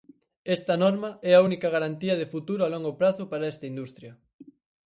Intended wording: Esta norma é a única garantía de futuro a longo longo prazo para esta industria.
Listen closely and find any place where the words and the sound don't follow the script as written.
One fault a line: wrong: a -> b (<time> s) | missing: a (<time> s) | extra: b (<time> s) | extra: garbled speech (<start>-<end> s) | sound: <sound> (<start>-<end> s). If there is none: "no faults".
missing: longo (2.9 s)